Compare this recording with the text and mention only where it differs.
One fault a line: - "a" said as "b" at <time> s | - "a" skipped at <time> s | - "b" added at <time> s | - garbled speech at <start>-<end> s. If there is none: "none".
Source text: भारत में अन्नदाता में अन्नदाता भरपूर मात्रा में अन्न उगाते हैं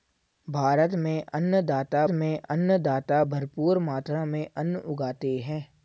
none